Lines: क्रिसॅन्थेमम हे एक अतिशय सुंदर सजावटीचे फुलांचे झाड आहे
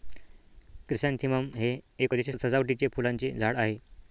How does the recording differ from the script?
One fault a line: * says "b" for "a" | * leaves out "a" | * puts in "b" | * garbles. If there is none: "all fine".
* leaves out "सुंदर"